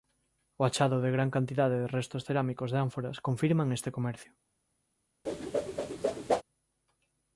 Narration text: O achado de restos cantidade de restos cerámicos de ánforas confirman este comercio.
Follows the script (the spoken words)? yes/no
no